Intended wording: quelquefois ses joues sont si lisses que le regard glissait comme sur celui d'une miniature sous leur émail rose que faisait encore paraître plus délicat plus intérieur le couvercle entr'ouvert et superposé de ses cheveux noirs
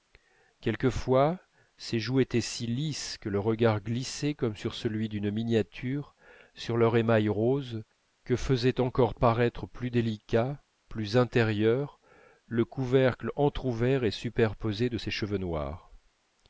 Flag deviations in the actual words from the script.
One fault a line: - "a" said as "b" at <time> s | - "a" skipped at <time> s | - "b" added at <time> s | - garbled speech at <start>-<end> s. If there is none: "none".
- "sont" said as "étaient" at 2.2 s
- "sous" said as "sur" at 6.5 s